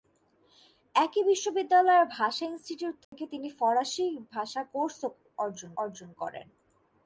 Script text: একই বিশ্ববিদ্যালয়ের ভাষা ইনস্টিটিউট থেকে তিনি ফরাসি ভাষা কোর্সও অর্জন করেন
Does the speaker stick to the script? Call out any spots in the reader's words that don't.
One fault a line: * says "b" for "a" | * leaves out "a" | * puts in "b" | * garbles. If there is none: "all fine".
* puts in "অর্জন"